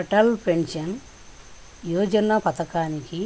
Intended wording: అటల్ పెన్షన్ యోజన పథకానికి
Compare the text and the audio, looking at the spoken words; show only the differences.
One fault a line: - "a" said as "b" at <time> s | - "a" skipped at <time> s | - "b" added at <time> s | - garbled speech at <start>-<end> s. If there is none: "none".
none